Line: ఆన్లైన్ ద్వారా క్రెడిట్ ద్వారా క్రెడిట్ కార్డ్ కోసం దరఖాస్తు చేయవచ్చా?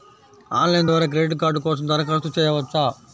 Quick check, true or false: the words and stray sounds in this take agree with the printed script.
false